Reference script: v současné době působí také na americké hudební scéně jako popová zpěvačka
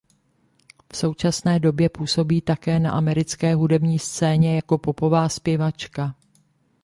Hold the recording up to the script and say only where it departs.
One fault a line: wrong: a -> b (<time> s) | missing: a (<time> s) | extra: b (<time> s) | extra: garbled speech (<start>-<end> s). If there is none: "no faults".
no faults